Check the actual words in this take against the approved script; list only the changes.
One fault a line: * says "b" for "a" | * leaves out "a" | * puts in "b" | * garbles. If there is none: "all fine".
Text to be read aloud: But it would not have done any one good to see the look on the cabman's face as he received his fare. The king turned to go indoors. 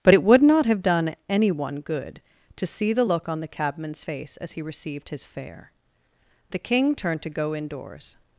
all fine